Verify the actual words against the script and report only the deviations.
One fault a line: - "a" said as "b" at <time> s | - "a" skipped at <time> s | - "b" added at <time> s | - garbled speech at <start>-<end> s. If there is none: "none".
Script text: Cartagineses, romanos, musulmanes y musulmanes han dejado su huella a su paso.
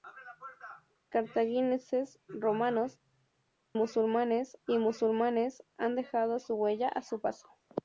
none